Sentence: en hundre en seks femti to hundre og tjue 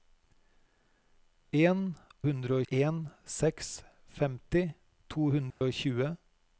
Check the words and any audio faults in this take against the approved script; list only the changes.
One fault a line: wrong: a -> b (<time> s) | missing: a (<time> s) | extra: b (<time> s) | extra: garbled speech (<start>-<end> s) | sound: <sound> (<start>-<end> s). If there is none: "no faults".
sound: dropout (5.5-5.6 s)